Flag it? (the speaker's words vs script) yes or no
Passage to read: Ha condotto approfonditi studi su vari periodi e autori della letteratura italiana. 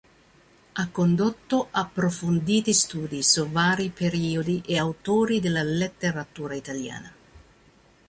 no